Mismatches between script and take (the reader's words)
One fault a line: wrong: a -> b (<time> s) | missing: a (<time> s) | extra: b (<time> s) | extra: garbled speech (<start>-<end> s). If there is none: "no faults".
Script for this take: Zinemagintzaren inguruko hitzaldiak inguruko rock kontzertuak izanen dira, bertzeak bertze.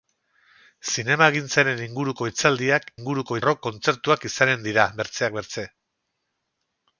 no faults